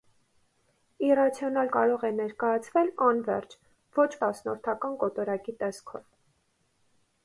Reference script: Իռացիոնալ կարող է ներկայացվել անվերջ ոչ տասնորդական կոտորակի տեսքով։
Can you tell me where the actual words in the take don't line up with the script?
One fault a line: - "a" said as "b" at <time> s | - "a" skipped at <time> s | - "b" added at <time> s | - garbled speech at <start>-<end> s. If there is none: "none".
none